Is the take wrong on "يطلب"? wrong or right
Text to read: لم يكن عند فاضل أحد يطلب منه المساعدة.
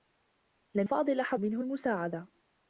wrong